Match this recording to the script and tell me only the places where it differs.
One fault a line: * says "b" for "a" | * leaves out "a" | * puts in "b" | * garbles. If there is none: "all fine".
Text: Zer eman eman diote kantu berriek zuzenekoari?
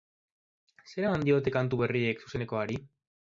* leaves out "eman"